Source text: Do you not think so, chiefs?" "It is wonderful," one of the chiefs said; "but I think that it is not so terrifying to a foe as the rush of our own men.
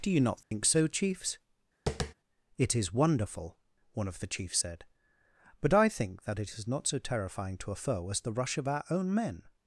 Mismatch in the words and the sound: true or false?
true